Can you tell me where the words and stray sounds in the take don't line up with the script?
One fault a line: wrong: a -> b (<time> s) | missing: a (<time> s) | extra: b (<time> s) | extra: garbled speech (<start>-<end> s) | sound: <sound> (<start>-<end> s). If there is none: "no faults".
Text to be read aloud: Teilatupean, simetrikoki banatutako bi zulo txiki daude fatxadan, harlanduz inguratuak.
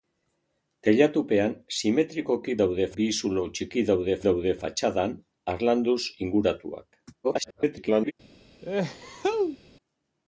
wrong: banatutako -> daude (2.6 s)
extra: daude (4.3 s)
extra: garbled speech (7.2-8.1 s)
sound: sneeze (8.6-9.6 s)